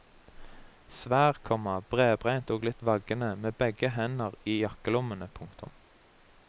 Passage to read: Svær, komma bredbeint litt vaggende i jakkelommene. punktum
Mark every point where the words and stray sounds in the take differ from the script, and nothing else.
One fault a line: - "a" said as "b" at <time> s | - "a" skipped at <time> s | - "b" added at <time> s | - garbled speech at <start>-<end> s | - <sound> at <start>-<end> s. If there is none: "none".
- "og" added at 2.5 s
- "med begge hender" added at 3.4 s